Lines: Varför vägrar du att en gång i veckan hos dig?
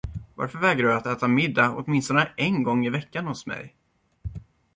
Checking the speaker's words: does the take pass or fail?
fail